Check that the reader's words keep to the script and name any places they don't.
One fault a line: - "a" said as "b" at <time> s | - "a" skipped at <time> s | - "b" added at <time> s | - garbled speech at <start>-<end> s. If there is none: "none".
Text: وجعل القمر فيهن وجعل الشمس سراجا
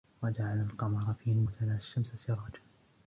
none